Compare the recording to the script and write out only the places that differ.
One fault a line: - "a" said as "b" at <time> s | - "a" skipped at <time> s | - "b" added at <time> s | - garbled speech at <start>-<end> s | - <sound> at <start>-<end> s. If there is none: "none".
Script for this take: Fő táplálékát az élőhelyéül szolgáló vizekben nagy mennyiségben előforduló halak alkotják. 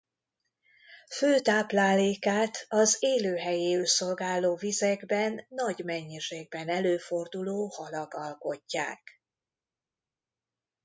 none